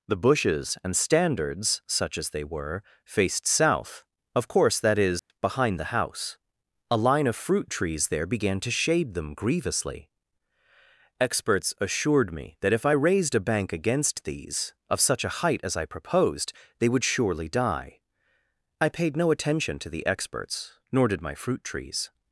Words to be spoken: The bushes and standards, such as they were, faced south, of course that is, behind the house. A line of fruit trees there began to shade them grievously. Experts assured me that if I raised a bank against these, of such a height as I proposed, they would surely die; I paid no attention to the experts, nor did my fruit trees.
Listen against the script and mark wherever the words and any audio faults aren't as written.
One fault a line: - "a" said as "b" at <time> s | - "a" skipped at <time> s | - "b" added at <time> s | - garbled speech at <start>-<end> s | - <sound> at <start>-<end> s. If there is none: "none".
- dropout at 5.2-5.3 s